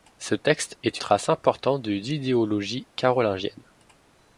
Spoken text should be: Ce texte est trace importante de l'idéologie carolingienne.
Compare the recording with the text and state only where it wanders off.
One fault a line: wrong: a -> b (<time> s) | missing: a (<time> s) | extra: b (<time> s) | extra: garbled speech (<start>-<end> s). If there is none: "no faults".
no faults